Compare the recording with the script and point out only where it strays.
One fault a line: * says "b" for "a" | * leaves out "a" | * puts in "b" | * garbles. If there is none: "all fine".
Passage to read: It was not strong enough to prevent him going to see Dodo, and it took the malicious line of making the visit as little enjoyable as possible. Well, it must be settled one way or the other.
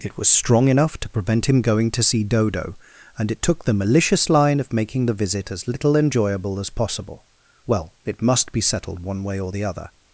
* leaves out "not"